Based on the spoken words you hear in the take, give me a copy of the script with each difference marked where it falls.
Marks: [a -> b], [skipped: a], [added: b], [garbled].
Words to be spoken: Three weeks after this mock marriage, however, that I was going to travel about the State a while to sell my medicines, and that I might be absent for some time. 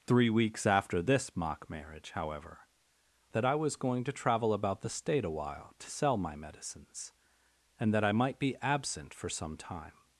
Three weeks after this mock marriage, however, that I was going to travel about the State a while to sell my medicines, and that I might be absent for some time.